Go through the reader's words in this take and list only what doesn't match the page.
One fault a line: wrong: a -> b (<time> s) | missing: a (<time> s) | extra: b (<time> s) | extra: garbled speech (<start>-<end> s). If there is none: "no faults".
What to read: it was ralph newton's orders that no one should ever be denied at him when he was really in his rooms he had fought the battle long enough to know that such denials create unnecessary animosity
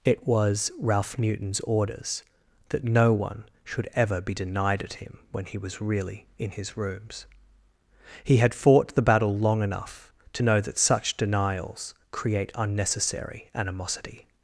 no faults